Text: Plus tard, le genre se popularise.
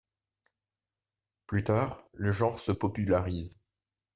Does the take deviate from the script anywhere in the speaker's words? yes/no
no